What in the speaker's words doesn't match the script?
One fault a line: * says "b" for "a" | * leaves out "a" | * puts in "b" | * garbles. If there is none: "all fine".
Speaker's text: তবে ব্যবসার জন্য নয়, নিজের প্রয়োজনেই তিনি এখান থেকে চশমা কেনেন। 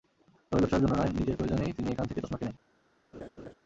all fine